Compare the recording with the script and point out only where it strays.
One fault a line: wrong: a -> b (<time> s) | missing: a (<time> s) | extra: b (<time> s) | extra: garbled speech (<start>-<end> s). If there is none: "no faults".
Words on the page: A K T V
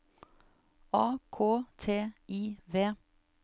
extra: I (2.3 s)